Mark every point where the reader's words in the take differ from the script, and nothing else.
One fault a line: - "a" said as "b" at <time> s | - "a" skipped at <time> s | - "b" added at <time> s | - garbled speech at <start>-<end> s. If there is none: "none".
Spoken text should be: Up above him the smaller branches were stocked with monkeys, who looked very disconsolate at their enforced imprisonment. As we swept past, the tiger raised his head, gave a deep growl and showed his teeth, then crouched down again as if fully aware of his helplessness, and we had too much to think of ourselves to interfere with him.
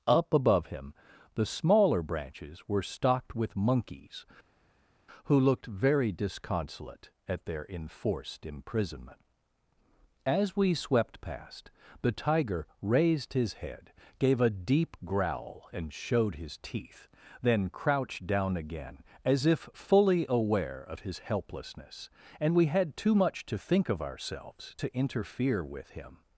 none